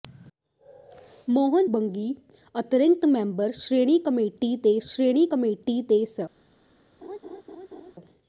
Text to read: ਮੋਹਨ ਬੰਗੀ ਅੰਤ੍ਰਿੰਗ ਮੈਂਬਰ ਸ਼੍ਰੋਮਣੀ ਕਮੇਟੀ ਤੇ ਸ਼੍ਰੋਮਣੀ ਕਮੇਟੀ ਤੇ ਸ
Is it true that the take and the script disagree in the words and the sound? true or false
true